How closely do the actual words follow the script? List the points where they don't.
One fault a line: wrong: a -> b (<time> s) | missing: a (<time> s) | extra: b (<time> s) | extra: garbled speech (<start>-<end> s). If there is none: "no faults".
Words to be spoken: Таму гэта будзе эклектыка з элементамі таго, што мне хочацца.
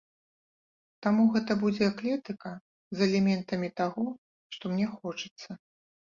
no faults